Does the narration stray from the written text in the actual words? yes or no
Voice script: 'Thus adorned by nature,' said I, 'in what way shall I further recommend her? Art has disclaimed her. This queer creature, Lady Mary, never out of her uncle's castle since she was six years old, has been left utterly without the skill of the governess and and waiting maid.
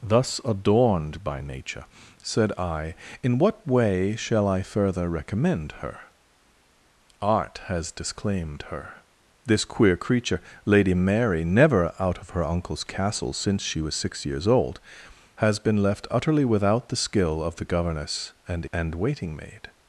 no